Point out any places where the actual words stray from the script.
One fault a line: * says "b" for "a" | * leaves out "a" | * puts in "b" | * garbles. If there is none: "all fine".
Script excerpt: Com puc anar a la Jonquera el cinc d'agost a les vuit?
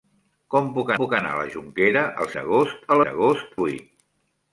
* puts in "puc"
* leaves out "cinc"
* says "d'agost" for "les"